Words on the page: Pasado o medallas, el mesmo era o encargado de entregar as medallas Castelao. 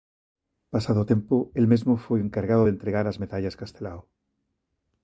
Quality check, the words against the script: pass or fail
fail